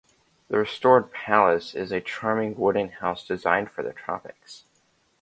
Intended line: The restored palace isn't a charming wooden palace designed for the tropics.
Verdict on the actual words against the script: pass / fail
fail